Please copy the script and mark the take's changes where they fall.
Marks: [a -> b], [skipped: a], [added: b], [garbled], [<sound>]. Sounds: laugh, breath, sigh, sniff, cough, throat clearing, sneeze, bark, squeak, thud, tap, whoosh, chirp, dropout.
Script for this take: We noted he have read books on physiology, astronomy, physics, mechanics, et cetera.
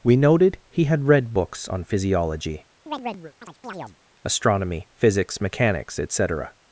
We noted he [have -> had] read books on physiology, [chirp] astronomy, physics, mechanics, et cetera.